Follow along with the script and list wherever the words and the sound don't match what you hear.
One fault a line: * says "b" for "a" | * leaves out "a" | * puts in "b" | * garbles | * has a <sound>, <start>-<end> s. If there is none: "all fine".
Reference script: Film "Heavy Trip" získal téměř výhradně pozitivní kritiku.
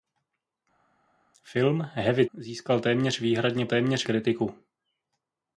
* leaves out "Trip"
* says "téměř" for "pozitivní"